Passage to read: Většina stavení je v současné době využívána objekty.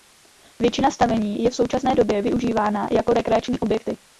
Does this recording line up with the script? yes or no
no